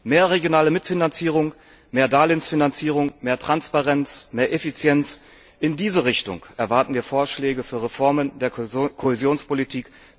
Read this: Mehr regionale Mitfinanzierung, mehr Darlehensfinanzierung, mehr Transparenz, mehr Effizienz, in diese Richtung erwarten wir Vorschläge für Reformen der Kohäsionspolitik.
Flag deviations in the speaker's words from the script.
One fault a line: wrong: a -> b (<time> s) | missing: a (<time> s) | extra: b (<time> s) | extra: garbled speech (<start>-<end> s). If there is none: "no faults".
no faults